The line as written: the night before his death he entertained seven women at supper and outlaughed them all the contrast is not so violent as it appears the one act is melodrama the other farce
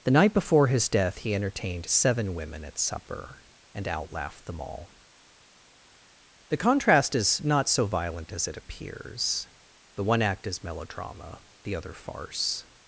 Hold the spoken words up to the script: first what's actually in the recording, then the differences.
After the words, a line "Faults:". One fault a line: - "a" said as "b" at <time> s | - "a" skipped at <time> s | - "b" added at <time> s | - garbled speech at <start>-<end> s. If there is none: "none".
the night before his death he entertained seven women at supper and outlaughed them all the contrast is not so violent as it appears the one act is melodrama the other farce
Faults:
none